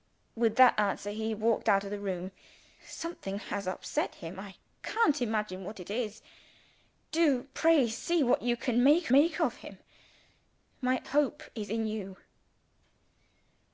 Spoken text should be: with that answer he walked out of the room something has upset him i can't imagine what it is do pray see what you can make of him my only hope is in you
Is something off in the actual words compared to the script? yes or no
yes